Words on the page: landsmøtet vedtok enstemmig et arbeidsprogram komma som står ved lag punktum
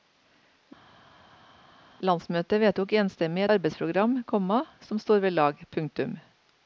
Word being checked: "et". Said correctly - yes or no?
no